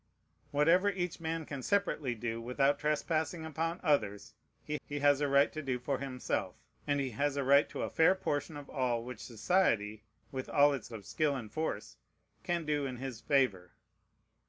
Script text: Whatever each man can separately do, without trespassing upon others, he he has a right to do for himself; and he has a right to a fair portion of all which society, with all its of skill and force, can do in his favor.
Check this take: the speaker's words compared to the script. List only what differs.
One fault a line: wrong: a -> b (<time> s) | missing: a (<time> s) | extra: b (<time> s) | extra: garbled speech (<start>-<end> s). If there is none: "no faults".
no faults